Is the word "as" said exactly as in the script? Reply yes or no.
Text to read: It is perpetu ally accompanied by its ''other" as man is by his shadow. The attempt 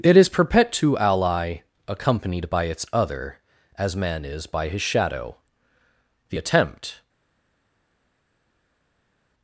yes